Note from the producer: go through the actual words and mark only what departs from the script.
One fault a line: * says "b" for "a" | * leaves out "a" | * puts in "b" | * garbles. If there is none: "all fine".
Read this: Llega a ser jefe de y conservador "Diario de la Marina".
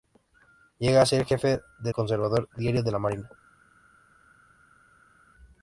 all fine